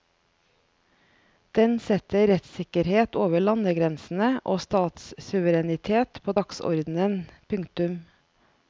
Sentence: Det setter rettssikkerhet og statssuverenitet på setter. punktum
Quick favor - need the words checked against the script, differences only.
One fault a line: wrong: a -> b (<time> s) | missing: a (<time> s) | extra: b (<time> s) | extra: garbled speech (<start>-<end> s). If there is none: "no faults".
wrong: Det -> Den (1.6 s)
extra: over landegrensene (3.2 s)
wrong: setter -> dagsordenen (6.4 s)